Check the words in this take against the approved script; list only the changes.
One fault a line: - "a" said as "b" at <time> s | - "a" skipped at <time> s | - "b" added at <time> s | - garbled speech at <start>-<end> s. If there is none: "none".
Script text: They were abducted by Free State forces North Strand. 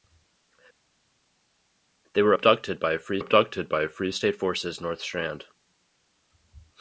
- "abducted by Free" added at 3.2 s